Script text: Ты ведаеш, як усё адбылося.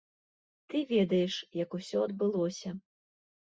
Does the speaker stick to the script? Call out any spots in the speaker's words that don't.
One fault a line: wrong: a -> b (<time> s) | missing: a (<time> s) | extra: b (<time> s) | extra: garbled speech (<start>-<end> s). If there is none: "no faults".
no faults